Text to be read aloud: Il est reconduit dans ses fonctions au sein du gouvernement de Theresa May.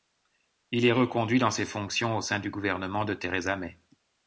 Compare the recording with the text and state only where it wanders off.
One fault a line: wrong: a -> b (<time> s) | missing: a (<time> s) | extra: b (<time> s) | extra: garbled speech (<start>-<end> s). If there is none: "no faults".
no faults